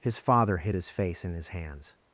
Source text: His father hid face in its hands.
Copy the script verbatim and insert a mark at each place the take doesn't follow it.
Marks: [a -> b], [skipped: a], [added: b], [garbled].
His father hid [added: his] face in [its -> his] hands.